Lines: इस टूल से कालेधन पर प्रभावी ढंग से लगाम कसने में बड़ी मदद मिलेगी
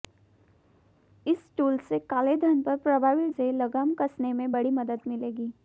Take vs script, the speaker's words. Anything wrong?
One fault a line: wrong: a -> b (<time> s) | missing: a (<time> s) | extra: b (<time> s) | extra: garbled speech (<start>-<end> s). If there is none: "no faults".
missing: ढंग (3.3 s)